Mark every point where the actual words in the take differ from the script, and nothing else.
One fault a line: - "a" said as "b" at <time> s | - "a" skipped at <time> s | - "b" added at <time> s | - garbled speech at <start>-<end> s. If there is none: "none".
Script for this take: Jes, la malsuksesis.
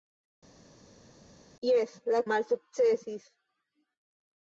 none